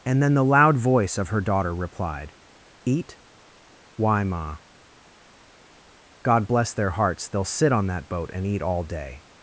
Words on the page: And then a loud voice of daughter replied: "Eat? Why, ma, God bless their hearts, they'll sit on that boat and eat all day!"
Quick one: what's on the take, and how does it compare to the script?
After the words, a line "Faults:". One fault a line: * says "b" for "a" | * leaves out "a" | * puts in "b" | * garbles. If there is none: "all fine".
And then the loud voice of her daughter replied: "Eat? Why, ma, God bless their hearts, they'll sit on that boat and eat all day!"
Faults:
* says "the" for "a"
* puts in "her"